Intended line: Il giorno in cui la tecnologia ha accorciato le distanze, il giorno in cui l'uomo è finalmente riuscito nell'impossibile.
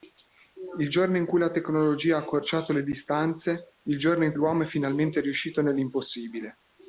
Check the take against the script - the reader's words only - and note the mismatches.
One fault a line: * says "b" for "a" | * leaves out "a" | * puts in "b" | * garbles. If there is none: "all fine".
* leaves out "cui"